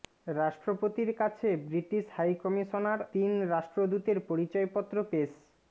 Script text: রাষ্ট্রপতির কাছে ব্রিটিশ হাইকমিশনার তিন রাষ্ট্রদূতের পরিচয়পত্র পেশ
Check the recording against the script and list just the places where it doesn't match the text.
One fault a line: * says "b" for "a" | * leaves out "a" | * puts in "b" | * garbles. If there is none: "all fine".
all fine